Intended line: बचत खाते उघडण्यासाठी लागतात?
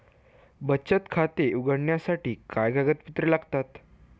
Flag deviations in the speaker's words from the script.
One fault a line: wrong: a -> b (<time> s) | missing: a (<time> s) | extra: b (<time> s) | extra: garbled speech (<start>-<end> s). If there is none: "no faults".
extra: काय कागदपत्रे (2.5 s)